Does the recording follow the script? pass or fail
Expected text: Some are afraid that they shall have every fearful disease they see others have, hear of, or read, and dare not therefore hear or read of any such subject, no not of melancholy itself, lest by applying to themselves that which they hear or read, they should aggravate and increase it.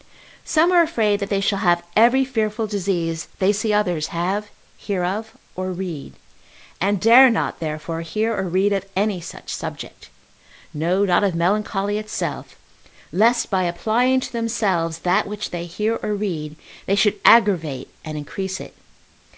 pass